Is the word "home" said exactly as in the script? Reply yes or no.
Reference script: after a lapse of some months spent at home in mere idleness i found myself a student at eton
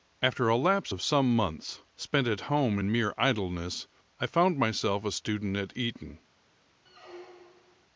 yes